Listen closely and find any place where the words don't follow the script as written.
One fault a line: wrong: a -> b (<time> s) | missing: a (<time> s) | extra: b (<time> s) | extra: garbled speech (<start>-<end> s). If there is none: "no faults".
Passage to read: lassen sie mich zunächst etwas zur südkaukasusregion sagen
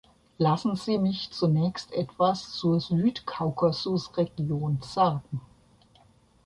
no faults